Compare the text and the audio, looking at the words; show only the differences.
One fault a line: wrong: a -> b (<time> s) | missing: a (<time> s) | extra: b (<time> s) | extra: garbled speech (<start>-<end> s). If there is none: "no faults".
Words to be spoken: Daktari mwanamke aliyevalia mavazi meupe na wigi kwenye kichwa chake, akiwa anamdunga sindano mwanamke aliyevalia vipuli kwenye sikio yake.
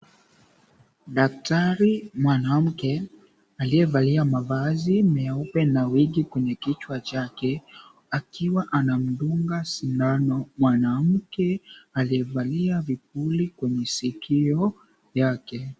no faults